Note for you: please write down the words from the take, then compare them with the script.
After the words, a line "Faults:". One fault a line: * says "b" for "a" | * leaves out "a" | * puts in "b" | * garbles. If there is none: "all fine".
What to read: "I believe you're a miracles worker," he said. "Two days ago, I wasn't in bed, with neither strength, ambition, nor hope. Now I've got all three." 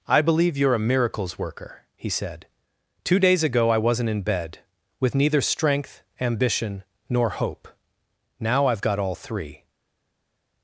"I believe you're a miracles worker," he said. "Two days ago, I wasn't in bed, with neither strength, ambition, nor hope. Now I've got all three."
Faults:
all fine